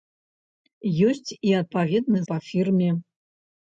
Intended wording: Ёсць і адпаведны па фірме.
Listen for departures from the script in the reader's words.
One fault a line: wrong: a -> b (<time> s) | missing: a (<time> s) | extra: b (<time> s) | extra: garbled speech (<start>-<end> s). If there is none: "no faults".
no faults